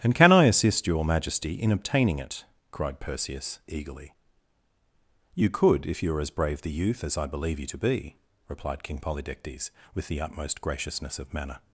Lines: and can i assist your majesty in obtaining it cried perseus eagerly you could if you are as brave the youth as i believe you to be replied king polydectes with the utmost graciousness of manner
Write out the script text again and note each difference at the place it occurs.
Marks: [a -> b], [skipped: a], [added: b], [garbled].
and can i assist your majesty in obtaining it cried perseus eagerly you could if you are as brave the youth as i believe you to be replied king polydectes with the utmost graciousness of manner